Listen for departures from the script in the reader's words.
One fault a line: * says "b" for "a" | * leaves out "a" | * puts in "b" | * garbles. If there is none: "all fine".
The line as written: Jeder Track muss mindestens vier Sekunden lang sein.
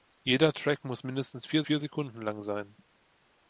* puts in "vier"